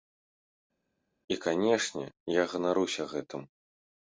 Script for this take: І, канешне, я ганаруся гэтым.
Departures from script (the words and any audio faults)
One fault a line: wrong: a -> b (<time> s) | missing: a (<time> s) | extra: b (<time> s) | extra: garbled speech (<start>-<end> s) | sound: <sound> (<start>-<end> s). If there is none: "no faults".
no faults